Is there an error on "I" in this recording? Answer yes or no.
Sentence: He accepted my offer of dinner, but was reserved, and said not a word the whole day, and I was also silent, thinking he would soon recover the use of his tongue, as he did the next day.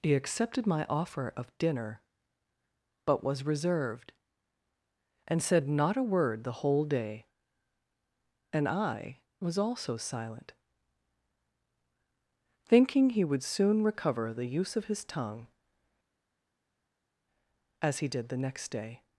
no